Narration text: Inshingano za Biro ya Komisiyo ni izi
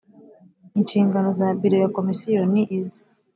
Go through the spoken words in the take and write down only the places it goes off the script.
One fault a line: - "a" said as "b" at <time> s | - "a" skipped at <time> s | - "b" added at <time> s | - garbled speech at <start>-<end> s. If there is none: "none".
none